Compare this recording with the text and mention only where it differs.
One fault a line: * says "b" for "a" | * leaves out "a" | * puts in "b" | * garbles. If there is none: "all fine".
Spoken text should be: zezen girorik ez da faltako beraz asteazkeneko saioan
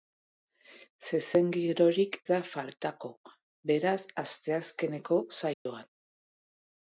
* leaves out "ez"